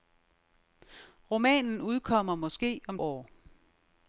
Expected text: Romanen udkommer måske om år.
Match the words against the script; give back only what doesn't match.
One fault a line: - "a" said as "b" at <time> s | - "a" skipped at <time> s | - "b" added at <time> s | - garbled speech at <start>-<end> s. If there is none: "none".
none